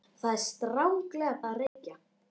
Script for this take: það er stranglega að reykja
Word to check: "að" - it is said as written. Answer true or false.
true